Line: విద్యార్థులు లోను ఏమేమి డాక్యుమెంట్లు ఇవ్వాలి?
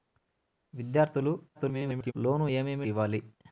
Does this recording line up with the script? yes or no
no